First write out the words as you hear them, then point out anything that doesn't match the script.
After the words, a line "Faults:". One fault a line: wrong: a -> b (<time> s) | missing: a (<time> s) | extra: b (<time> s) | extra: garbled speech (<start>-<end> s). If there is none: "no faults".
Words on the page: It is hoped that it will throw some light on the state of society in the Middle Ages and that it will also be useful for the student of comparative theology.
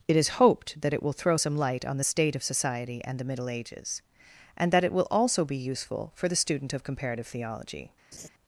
It is hoped that it will throw some light on the state of society and the Middle Ages and that it will also be useful for the student of comparative theology.
Faults:
wrong: in -> and (3.0 s)